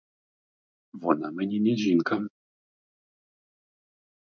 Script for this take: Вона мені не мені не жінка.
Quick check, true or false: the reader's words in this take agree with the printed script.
false